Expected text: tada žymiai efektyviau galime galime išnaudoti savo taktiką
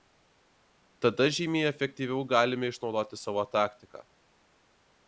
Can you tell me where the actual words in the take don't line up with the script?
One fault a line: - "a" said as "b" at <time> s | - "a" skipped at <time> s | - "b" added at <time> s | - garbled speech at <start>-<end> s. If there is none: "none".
- "galime" skipped at 2.7 s